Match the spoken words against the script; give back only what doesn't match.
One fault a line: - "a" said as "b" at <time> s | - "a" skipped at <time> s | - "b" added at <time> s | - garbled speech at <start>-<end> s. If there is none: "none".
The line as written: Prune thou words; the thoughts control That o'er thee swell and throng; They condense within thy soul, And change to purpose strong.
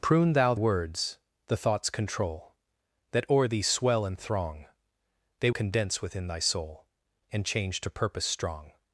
none